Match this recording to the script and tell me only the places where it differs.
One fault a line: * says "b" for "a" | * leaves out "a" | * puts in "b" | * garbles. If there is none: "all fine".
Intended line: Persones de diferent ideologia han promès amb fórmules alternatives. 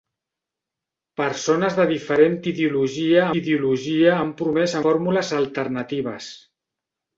* puts in "ideologia"
* leaves out "amb"